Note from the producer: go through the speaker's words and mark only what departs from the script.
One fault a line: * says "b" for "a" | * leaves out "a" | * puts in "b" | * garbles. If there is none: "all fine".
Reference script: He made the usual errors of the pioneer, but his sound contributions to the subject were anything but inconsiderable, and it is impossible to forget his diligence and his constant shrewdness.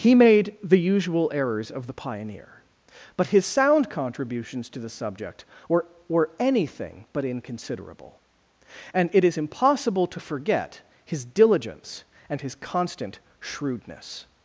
* puts in "were"